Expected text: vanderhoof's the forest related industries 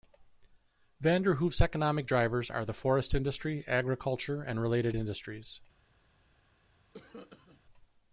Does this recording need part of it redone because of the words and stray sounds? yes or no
yes